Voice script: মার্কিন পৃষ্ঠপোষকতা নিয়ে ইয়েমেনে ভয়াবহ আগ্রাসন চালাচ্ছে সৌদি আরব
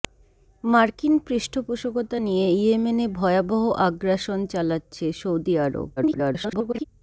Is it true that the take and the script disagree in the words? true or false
true